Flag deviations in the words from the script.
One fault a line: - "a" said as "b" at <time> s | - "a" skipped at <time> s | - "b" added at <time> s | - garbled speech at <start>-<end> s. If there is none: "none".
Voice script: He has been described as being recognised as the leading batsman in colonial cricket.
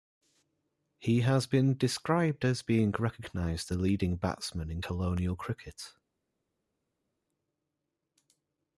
- "as" skipped at 3.7 s